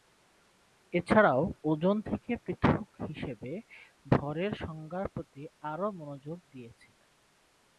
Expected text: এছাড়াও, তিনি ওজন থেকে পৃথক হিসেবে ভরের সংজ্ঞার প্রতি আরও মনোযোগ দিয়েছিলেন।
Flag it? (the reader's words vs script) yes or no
yes